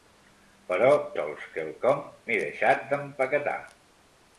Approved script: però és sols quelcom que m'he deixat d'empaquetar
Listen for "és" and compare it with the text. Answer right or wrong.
wrong